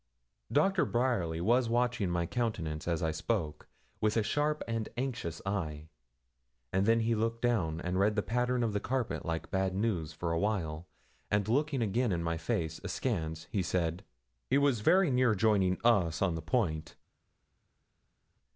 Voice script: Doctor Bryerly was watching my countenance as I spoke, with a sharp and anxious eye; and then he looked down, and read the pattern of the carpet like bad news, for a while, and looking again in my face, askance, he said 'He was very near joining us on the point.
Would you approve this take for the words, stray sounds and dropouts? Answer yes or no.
yes